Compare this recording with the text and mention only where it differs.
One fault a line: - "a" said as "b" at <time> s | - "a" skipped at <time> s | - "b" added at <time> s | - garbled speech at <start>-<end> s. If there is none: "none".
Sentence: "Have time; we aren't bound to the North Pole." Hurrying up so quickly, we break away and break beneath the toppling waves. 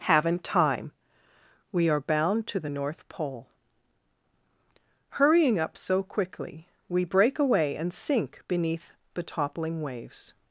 - "Have" said as "Haven't" at 0.1 s
- "aren't" said as "are" at 1.9 s
- "break" said as "sink" at 7.9 s